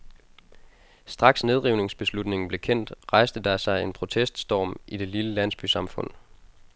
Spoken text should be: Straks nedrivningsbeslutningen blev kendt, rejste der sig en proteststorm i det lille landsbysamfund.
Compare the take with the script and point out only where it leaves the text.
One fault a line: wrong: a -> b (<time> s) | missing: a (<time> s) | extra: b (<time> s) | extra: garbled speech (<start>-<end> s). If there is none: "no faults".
no faults